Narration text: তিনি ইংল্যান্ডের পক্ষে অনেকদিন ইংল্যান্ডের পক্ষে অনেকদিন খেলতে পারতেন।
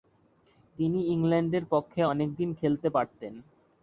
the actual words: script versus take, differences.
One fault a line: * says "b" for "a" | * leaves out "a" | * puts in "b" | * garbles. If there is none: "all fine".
* leaves out "ইংল্যান্ডের পক্ষে অনেকদিন"